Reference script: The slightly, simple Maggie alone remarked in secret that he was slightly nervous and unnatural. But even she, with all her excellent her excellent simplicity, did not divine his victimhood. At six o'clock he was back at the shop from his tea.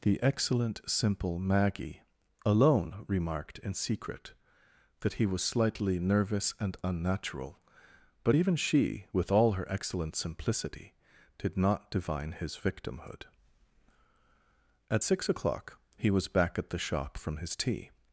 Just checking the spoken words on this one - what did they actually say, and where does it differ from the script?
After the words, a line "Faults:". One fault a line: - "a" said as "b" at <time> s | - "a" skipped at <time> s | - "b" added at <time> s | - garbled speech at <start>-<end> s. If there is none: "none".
The excellent, simple Maggie alone remarked in secret that he was slightly nervous and unnatural. But even she, with all her excellent simplicity, did not divine his victimhood. At six o'clock he was back at the shop from his tea.
Faults:
- "slightly" said as "excellent" at 0.2 s
- "her excellent" skipped at 10.1 s